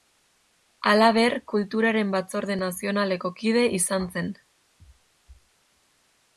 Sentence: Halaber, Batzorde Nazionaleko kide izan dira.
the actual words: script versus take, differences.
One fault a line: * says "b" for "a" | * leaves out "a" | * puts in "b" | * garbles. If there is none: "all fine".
* puts in "Kulturaren"
* says "zen" for "dira"